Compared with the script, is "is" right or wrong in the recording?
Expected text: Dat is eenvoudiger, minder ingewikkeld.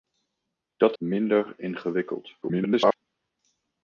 wrong